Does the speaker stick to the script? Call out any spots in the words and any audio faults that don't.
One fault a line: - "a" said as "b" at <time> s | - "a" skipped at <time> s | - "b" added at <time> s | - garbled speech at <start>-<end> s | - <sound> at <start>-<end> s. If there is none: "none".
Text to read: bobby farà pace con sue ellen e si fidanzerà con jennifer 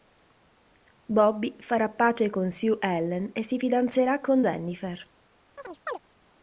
- chirp at 5.6-6.0 s